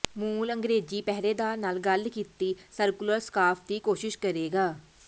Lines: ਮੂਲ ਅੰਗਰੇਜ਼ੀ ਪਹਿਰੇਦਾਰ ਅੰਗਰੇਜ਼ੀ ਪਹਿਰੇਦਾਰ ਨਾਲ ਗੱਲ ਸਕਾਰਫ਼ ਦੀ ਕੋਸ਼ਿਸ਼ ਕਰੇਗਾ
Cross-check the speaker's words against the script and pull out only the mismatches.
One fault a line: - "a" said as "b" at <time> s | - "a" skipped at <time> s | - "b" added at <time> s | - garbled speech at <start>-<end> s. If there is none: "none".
- "ਅੰਗਰੇਜ਼ੀ ਪਹਿਰੇਦਾਰ ਨਾਲ ਗੱਲ" said as "ਨਾਲ ਗੱਲ ਕੀਤੀ ਸਰਕੂਲਰ" at 1.6 s